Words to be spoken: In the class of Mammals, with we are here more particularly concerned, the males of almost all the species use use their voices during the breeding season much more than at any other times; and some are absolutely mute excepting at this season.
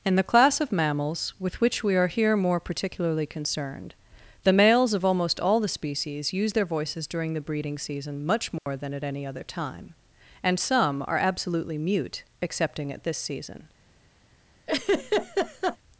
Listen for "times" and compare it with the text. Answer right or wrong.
wrong